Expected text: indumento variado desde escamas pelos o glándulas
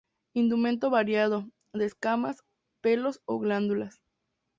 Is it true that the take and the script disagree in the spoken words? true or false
true